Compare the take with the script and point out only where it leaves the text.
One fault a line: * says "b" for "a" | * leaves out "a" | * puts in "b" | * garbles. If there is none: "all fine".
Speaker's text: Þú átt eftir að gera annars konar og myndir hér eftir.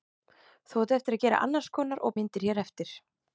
all fine